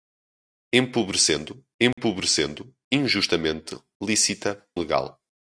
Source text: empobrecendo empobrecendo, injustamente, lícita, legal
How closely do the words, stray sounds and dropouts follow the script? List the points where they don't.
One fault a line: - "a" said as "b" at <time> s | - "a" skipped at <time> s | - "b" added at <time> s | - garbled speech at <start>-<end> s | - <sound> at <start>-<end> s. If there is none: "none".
- dropout at 1.9-2.0 s